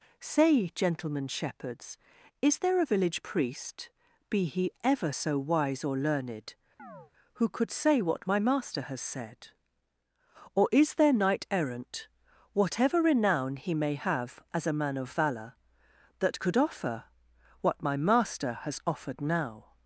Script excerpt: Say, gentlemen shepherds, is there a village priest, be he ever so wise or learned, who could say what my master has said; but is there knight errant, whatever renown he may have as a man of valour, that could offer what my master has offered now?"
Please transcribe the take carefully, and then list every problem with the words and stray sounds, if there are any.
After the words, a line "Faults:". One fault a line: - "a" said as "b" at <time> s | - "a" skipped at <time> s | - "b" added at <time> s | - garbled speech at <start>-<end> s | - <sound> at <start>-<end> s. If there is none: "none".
Say, gentlemen shepherds, is there a village priest, be he ever so wise or learned, who could say what my master has said; or is there knight errant, whatever renown he may have as a man of valour, that could offer what my master has offered now?"
Faults:
- chirp at 6.8-7.1 s
- "but" said as "or" at 10.5 s